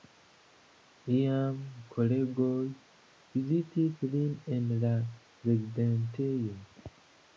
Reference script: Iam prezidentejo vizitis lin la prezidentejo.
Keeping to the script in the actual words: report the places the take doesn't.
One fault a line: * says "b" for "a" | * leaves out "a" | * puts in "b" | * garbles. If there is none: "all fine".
* says "kolegoj" for "prezidentejo"
* puts in "en"